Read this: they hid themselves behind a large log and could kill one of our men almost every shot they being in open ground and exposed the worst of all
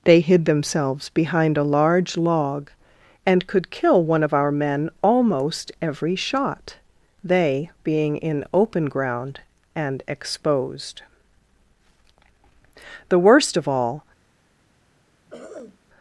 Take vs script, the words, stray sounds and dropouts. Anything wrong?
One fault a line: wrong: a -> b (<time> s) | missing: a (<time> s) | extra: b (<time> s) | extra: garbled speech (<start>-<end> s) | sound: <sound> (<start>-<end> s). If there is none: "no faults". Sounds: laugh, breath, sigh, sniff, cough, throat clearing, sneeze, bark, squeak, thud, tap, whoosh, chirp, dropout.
sound: throat clearing (15.3-15.8 s)